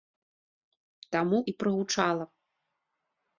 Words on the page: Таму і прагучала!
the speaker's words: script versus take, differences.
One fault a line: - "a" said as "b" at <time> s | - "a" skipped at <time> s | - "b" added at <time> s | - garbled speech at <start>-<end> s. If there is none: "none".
none